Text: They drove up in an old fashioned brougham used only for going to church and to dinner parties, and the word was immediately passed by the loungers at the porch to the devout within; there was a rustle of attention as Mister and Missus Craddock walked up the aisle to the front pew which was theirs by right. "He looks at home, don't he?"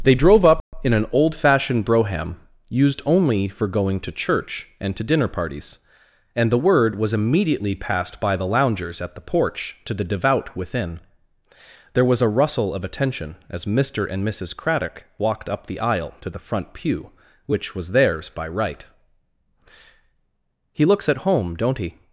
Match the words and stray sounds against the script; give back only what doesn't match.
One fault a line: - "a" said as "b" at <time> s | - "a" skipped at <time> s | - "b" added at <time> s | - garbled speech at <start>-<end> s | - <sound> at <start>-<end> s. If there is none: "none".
- dropout at 0.6-0.7 s